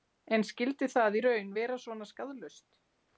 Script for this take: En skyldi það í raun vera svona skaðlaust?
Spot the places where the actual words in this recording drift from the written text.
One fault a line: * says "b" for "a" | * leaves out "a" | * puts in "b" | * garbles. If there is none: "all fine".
all fine